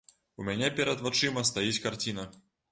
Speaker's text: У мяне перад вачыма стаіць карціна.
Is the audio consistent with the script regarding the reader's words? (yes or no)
yes